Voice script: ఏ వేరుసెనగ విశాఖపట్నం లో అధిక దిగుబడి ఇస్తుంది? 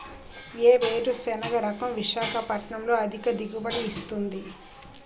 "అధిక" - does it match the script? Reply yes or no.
yes